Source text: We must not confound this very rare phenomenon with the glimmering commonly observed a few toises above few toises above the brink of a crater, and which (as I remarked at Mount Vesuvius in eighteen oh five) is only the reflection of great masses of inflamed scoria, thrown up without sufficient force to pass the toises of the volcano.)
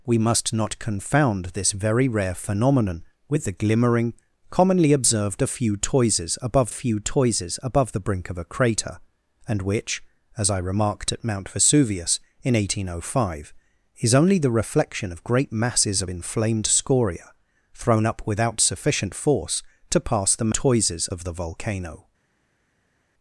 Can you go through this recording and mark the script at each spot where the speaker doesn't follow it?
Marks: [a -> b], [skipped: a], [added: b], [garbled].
We must not confound this very rare phenomenon with the glimmering commonly observed a few toises above few toises above the brink of a crater, and which (as I remarked at Mount Vesuvius in eighteen oh five) is only the reflection of great masses of inflamed scoria, thrown up without sufficient force to pass the toises of the volcano.)